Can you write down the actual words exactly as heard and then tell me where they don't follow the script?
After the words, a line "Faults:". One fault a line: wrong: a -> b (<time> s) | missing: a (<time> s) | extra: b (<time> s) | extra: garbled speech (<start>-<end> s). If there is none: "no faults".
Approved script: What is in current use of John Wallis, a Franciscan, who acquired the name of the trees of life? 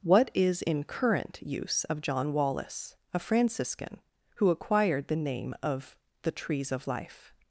What is in current use of John Wallis, a Franciscan, who acquired the name of the trees of life?
Faults:
no faults